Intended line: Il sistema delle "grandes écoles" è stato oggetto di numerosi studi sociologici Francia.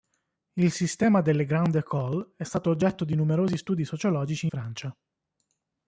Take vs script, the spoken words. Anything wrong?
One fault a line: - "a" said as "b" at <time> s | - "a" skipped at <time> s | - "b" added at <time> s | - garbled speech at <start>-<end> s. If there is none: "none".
none